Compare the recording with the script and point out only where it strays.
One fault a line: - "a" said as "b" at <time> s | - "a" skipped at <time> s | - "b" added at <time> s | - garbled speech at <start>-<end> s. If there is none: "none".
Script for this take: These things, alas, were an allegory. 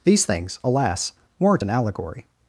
- "were" said as "weren't" at 1.4 s